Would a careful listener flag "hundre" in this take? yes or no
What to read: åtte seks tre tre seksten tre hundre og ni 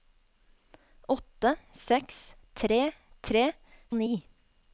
yes